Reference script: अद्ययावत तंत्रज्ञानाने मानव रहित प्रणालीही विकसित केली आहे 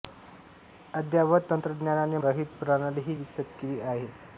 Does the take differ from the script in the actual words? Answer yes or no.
yes